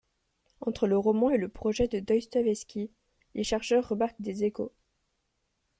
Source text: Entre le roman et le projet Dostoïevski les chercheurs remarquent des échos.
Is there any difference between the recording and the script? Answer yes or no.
yes